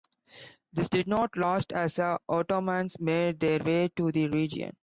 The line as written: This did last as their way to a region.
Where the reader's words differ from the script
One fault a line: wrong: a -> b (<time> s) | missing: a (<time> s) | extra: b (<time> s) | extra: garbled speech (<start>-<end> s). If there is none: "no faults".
extra: not (1.1 s)
extra: the Ottomans made (2.0 s)
wrong: a -> the (4.1 s)